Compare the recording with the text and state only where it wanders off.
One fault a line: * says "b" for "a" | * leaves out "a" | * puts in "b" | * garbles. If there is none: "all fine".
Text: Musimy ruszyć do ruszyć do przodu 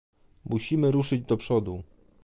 * leaves out "ruszyć do"